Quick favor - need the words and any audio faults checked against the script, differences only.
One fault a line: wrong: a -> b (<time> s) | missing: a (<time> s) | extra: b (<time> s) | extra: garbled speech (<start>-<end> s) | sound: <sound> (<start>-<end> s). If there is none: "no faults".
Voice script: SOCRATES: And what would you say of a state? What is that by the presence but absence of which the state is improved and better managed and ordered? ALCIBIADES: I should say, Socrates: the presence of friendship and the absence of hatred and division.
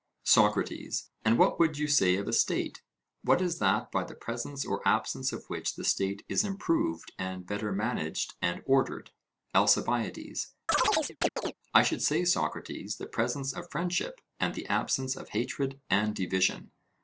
wrong: but -> or (4.6 s)
sound: chirp (10.7-11.5 s)